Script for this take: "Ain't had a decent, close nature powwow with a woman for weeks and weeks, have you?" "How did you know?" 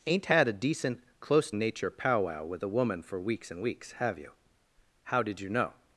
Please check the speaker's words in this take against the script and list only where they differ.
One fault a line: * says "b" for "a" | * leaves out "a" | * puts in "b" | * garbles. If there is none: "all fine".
all fine